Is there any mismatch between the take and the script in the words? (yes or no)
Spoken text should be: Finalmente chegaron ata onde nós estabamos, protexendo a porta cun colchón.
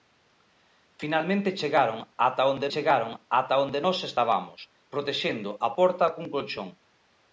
yes